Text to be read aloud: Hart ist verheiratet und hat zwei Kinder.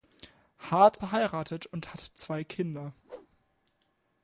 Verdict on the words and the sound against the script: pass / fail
fail